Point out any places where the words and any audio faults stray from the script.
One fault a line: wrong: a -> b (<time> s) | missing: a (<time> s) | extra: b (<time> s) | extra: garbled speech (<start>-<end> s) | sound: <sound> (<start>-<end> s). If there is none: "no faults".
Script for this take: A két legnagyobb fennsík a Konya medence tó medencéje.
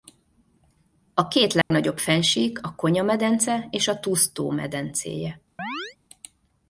sound: dropout (1.6-1.7 s)
extra: és a Tuz (3.7 s)
sound: chirp (5.6-6.0 s)